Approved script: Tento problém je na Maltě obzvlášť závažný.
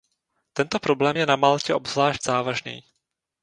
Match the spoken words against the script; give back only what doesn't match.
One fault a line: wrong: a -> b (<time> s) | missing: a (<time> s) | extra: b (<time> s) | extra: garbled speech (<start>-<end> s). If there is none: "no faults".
no faults